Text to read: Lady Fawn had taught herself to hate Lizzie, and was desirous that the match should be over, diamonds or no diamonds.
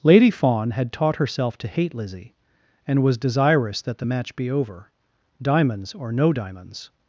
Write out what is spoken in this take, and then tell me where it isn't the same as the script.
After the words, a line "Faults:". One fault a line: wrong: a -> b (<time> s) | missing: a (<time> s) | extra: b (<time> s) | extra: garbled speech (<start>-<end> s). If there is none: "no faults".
Lady Fawn had taught herself to hate Lizzie, and was desirous that the match be over, diamonds or no diamonds.
Faults:
missing: should (4.4 s)